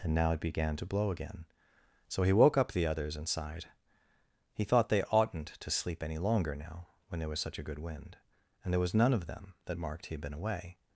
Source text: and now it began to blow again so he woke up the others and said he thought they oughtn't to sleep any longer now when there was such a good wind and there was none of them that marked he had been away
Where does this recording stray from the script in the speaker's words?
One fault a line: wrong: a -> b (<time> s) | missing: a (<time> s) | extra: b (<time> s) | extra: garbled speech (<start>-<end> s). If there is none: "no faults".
wrong: said -> sighed (3.3 s)